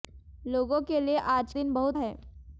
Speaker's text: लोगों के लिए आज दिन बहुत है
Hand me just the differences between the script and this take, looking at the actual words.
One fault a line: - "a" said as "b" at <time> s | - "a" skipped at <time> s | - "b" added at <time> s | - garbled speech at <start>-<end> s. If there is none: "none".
none